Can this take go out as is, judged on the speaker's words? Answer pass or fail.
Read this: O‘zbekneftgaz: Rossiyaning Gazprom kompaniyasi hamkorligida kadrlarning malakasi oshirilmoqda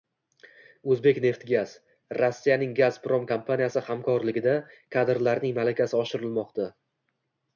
pass